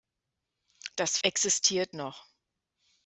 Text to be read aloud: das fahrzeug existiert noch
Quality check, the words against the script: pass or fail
fail